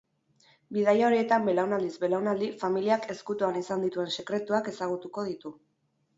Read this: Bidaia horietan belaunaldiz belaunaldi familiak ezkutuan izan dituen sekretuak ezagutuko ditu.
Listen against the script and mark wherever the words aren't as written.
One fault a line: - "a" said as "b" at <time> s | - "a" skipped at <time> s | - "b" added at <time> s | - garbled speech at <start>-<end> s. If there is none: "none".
none